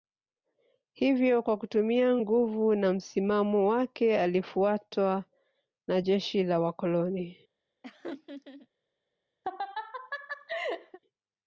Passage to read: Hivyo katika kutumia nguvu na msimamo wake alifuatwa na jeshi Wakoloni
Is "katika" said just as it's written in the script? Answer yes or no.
no